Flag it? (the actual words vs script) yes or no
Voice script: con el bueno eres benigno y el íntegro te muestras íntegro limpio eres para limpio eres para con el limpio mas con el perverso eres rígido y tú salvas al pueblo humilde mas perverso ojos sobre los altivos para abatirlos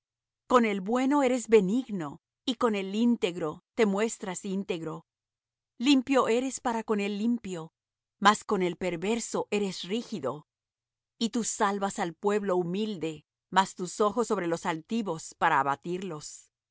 yes